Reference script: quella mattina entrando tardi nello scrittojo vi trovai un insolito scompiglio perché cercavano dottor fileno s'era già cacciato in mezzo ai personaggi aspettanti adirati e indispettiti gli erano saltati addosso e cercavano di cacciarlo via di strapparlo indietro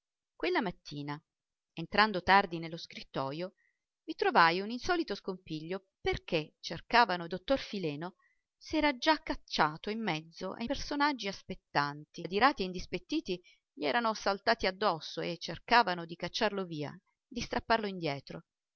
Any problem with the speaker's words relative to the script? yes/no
no